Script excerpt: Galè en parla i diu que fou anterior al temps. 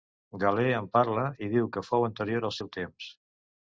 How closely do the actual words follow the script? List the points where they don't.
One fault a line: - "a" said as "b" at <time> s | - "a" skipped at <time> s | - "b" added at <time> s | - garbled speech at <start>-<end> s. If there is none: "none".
- "seu" added at 2.6 s